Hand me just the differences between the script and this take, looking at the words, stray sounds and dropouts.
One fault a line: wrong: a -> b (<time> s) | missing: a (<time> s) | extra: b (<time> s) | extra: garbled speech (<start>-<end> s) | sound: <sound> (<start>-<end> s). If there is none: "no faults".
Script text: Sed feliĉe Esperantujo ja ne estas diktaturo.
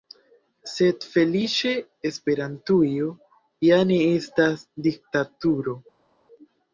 no faults